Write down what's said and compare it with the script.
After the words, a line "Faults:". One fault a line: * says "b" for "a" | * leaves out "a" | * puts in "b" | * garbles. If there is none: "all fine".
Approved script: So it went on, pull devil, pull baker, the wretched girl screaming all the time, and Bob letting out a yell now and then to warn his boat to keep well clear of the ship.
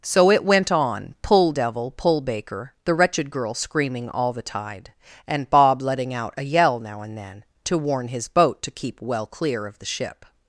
So it went on, pull devil, pull baker, the wretched girl screaming all the tide, and Bob letting out a yell now and then to warn his boat to keep well clear of the ship.
Faults:
* says "tide" for "time"